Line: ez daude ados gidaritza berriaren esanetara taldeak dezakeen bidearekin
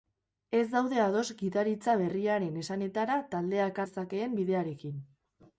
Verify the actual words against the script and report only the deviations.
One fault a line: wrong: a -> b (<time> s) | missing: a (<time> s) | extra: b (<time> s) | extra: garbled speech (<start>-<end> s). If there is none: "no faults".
no faults